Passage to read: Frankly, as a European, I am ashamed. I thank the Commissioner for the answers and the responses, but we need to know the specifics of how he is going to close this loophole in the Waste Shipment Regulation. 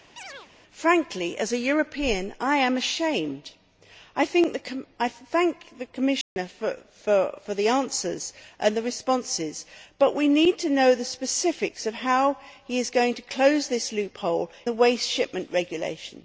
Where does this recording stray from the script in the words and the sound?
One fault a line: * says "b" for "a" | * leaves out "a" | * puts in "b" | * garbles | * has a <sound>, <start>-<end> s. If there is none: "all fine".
* has a chirp, 0.2-0.5 s
* has a dropout, 6.2-6.4 s
* leaves out "in"